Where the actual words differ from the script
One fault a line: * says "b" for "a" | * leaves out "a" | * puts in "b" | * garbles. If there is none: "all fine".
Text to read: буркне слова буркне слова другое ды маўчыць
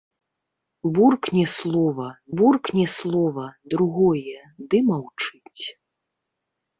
all fine